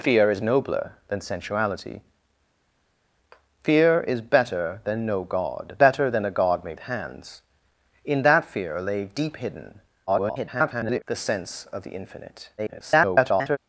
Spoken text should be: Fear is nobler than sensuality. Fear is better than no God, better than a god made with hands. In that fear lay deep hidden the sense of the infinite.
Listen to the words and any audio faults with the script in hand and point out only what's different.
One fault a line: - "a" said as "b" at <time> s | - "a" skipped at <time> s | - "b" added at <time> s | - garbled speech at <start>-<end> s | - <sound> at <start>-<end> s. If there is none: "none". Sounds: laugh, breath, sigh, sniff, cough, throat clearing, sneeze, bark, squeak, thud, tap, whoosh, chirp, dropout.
- "with" skipped at 6.8 s
- garbled speech at 10.1-11.0 s
- garbled speech at 12.6-13.6 s